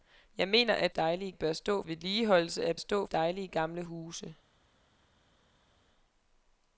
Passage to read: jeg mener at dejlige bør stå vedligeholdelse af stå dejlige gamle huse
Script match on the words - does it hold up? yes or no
yes